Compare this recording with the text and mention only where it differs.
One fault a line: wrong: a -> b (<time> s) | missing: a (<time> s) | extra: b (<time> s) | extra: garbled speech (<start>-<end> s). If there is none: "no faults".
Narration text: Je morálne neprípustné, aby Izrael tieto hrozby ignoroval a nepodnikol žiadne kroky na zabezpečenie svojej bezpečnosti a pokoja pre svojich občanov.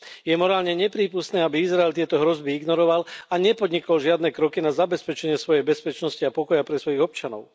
no faults